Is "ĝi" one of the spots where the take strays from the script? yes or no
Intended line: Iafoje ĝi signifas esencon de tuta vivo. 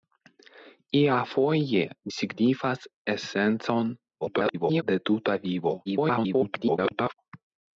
yes